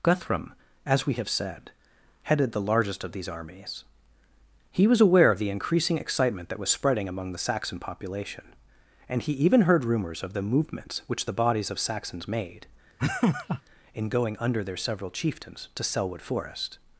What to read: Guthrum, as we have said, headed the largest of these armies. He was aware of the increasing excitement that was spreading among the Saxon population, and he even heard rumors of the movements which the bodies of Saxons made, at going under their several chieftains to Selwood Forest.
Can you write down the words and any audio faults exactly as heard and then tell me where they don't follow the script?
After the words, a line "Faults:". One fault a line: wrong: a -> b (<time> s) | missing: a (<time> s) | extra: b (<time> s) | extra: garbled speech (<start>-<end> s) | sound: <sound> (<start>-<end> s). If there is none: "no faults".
Guthrum, as we have said, headed the largest of these armies. He was aware of the increasing excitement that was spreading among the Saxon population, and he even heard rumors of the movements which the bodies of Saxons made, in going under their several chieftains to Selwood Forest.
Faults:
sound: laugh (13.0-13.6 s)
wrong: at -> in (13.9 s)